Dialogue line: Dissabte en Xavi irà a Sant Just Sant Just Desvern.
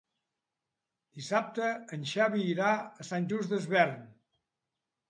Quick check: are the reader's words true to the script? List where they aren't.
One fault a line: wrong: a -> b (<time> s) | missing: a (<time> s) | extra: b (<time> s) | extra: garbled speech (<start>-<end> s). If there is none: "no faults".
missing: Sant Just (3.6 s)